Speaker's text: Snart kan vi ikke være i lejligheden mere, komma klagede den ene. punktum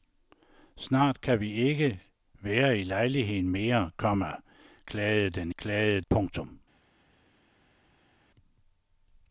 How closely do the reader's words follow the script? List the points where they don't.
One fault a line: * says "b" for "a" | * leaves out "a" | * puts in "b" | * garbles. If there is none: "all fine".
* says "klagede" for "ene"